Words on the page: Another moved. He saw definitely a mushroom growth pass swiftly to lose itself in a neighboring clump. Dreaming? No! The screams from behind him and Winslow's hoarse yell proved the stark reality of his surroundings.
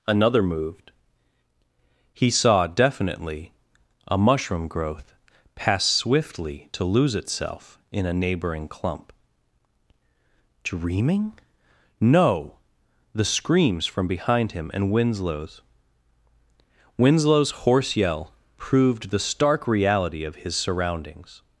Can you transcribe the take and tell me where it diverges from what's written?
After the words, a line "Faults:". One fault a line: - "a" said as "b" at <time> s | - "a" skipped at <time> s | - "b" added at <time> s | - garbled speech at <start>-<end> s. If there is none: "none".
Another moved. He saw definitely a mushroom growth pass swiftly to lose itself in a neighboring clump. Dreaming? No! The screams from behind him and Winslow's Winslow's hoarse yell proved the stark reality of his surroundings.
Faults:
- "Winslow's" added at 17.0 s